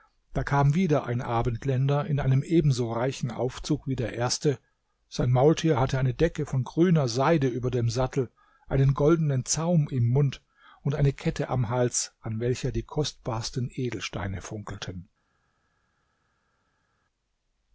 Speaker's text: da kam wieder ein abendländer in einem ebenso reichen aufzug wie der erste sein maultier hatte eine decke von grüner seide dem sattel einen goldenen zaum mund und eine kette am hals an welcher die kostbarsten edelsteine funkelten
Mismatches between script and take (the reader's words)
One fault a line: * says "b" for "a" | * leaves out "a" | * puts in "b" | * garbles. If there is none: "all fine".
* puts in "über"
* puts in "im"